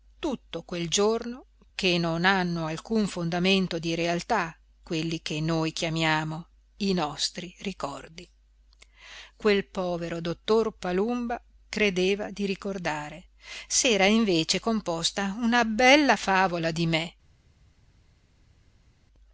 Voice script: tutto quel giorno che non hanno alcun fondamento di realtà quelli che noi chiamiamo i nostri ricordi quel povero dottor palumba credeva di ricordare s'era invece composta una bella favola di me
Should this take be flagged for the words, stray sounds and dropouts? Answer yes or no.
no